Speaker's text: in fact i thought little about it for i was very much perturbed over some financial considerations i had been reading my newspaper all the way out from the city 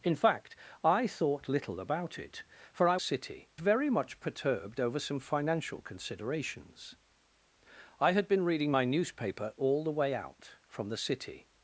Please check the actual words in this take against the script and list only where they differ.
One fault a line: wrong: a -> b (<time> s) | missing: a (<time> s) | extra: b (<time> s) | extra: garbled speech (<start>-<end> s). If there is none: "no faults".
wrong: was -> city (3.0 s)